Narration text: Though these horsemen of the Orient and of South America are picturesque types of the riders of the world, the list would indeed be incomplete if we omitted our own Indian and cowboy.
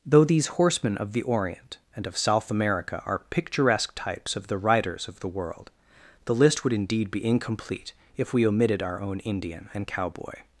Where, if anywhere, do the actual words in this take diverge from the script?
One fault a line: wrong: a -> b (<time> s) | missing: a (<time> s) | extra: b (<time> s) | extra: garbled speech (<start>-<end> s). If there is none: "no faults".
no faults